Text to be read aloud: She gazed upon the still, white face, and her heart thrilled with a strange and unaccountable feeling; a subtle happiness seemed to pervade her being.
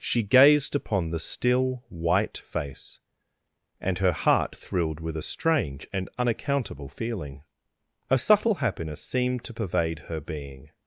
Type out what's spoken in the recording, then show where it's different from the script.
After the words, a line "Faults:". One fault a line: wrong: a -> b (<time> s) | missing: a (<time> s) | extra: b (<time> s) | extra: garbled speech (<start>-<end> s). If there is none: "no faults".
She gazed upon the still, white face, and her heart thrilled with a strange and unaccountable feeling; a subtle happiness seemed to pervade her being.
Faults:
no faults